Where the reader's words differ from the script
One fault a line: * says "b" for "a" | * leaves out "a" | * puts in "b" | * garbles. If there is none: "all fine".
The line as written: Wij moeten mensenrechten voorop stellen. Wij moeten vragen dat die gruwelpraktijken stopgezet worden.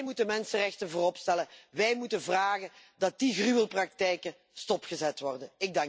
all fine